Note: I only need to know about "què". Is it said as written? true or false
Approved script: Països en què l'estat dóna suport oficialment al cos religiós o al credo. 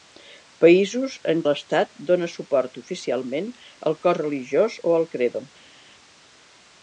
false